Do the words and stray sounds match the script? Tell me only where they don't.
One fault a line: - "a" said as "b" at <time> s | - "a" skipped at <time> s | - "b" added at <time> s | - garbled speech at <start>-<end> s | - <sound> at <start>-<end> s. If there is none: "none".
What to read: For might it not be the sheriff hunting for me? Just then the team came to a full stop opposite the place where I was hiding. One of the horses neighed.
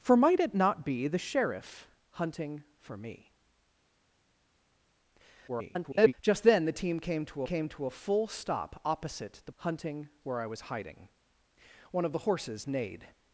- garbled speech at 5.5-6.1 s
- "came to" added at 7.4 s
- "place" said as "hunting" at 9.6 s